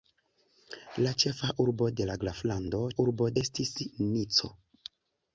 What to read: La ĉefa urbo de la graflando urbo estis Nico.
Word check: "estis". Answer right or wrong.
right